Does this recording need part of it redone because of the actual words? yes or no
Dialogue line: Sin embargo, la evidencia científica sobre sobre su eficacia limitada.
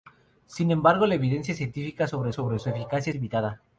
no